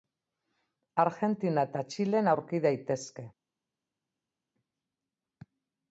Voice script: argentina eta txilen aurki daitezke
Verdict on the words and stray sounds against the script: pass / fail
pass